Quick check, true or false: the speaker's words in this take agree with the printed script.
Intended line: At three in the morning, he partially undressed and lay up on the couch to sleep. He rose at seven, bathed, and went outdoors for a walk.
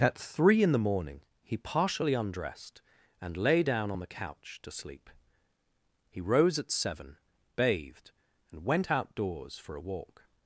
false